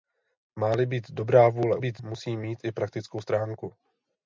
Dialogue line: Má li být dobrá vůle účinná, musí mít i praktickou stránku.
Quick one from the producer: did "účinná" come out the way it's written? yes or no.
no